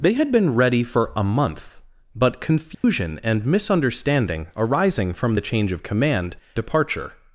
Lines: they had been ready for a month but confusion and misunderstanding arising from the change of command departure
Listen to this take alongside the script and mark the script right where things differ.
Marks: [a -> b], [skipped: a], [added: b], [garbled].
they had been ready for a month but confusion and misunderstanding arising from the change of command departure